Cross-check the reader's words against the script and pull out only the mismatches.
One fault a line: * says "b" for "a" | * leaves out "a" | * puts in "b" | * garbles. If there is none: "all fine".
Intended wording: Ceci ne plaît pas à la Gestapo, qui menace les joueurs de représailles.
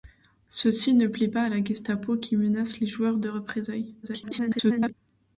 * garbles